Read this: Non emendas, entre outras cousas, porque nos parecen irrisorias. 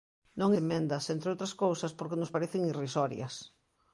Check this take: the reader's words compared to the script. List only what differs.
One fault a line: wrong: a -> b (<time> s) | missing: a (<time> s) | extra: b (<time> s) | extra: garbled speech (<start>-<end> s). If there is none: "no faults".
no faults